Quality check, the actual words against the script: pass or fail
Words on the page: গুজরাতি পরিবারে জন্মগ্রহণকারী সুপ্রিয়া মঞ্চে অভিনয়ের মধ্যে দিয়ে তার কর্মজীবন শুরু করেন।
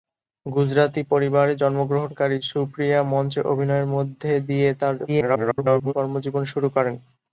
fail